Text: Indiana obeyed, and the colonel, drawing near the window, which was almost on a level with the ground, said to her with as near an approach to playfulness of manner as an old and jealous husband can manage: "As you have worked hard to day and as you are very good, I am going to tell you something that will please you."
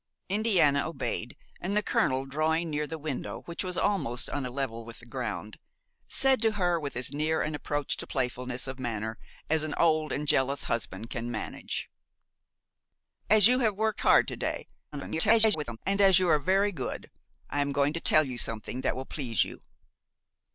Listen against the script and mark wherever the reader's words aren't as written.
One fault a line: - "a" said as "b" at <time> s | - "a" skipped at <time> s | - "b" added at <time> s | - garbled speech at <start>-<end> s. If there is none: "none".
- garbled speech at 14.9-15.8 s